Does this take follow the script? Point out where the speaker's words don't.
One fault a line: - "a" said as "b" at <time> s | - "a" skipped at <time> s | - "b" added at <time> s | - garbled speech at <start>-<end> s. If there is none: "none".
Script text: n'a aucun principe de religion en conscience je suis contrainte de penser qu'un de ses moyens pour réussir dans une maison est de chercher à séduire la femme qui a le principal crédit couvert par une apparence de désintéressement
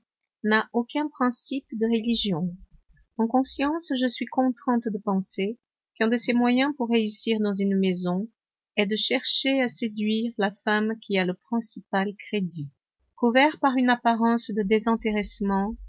none